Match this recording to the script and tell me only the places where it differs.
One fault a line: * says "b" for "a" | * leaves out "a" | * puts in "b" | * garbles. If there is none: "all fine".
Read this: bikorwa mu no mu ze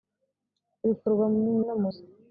all fine